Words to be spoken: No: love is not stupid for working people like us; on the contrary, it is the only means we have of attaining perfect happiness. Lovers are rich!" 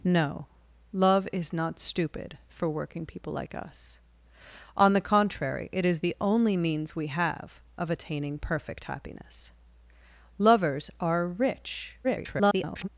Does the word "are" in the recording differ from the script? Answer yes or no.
no